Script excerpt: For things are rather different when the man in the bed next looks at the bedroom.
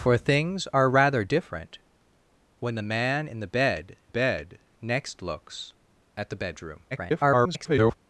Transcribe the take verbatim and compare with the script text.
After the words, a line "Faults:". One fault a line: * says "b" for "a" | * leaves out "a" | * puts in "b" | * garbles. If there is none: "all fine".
For things are rather different when the man in the bed bed next looks at the bedroom. [garbled]
Faults:
* puts in "bed"
* garbles